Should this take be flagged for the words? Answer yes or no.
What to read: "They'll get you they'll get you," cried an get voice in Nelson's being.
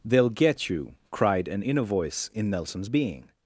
yes